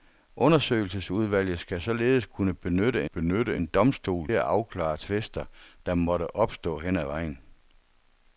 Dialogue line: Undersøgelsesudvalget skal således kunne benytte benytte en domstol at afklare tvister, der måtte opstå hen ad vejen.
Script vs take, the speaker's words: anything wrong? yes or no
no